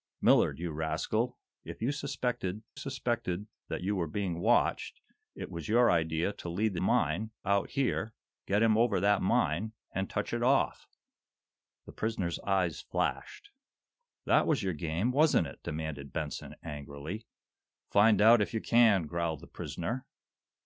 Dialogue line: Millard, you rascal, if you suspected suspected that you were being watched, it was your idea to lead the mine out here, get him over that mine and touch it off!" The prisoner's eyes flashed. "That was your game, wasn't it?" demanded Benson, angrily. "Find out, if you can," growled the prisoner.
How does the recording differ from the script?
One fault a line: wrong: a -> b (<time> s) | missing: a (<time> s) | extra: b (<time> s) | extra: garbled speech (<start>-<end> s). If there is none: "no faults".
no faults